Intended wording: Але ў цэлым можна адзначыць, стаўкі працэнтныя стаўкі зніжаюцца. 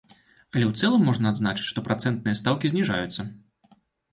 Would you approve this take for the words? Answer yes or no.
no